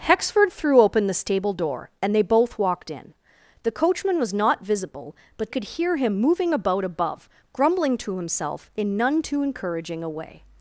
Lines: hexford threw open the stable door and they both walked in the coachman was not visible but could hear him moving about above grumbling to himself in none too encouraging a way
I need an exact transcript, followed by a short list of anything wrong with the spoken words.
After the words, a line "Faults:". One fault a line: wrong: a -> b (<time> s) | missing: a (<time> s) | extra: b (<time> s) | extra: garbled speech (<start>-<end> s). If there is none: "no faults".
hexford threw open the stable door and they both walked in the coachman was not visible but could hear him moving about above grumbling to himself in none too encouraging a way
Faults:
no faults